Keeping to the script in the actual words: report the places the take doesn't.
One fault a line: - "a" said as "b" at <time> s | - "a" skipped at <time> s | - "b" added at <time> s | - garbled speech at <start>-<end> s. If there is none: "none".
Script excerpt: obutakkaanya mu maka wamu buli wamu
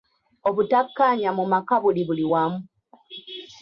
- "wamu" said as "buli" at 1.8 s